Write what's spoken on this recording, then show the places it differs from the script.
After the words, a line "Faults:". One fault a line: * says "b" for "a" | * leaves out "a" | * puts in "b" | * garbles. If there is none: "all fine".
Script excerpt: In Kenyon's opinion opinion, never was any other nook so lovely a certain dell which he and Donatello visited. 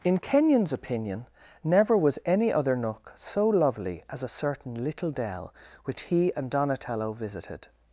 In Kenyon's opinion, never was any other nook so lovely as a certain little dell which he and Donatello visited.
Faults:
* leaves out "opinion"
* puts in "as"
* puts in "little"